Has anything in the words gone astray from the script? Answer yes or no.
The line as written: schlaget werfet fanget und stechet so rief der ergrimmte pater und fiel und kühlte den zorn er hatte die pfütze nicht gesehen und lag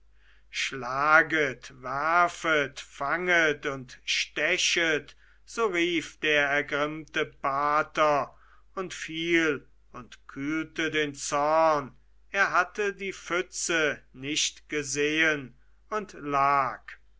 no